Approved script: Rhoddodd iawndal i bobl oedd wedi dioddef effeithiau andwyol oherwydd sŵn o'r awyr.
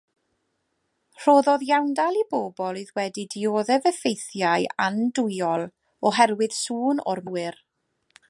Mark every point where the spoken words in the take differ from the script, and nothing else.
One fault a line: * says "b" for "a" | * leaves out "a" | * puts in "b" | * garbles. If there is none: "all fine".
all fine